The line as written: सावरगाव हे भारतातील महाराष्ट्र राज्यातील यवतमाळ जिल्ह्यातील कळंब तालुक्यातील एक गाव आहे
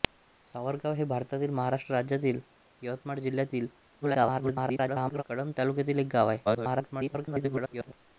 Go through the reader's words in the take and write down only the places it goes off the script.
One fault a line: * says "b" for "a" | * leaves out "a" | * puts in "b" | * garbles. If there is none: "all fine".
* garbles
* garbles